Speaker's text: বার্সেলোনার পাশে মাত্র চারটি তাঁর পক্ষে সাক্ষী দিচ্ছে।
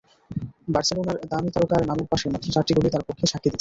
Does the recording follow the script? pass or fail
fail